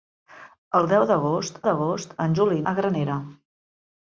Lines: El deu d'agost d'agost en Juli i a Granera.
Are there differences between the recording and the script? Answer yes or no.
no